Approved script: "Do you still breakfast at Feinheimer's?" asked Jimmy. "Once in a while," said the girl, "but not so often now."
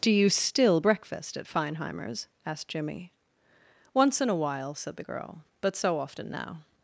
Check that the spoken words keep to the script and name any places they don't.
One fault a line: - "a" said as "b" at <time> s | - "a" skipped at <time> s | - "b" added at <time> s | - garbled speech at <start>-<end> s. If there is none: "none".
- "not" skipped at 5.8 s